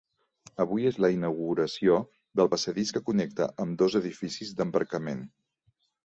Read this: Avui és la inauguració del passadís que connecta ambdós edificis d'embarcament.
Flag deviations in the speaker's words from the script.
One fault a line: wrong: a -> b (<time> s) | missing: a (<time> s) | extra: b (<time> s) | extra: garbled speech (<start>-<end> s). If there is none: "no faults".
no faults